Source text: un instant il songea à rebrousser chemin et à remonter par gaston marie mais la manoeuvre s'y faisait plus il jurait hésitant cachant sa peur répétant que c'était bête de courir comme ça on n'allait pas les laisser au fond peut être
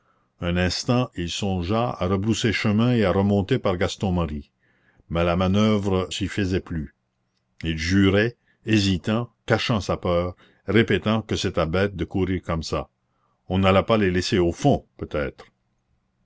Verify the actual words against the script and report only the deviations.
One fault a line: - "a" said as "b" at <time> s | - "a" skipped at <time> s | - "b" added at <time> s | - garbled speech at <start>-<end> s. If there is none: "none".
none